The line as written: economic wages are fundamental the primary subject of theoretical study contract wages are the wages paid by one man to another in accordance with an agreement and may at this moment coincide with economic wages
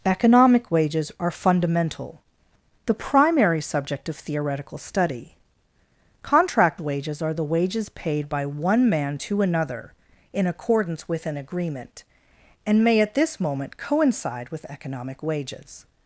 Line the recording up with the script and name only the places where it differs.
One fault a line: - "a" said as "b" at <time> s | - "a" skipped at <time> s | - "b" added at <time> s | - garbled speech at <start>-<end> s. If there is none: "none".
none